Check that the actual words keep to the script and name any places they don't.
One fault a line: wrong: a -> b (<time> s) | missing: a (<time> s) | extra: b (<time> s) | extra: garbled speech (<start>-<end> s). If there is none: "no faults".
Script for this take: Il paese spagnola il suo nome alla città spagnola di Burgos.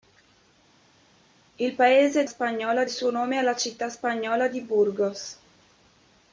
no faults